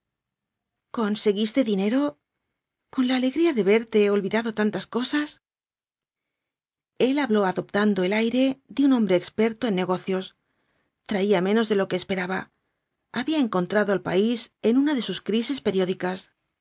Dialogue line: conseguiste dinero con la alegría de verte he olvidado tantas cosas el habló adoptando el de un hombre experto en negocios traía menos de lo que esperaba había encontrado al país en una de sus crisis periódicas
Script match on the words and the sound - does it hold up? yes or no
no